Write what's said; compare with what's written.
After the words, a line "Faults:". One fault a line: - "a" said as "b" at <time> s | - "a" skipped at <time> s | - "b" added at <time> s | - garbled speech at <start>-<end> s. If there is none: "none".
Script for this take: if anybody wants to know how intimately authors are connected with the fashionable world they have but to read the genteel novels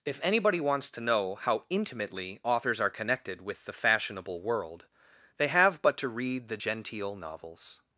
if anybody wants to know how intimately authors are connected with the fashionable world they have but to read the genteel novels
Faults:
none